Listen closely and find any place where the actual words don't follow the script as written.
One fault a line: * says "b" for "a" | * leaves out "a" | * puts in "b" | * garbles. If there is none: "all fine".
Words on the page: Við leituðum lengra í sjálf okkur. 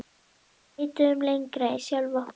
all fine